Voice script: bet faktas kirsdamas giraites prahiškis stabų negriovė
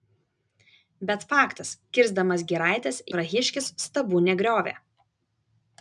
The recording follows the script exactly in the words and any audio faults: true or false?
true